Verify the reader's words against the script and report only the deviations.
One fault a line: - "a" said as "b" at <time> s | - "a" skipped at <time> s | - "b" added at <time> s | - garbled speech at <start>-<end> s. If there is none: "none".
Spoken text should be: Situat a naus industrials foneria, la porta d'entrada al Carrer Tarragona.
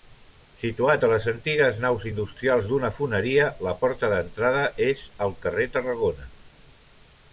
- "les antigues" added at 1.1 s
- "d'una" added at 2.7 s
- "és" added at 4.9 s